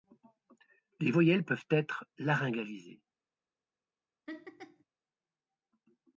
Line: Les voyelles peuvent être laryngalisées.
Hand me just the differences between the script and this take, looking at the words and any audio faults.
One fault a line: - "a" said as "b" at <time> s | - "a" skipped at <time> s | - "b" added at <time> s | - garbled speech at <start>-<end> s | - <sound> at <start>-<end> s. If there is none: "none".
- laugh at 4.3-4.8 s